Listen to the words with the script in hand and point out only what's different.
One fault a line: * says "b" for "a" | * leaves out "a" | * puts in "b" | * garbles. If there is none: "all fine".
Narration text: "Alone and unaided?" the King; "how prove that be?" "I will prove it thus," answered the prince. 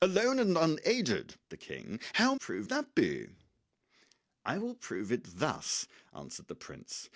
all fine